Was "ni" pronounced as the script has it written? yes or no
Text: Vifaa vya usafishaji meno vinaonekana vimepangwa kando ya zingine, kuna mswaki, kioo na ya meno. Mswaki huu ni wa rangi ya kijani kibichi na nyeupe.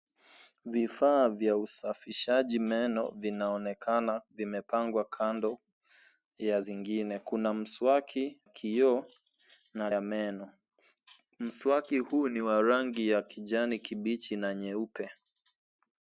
yes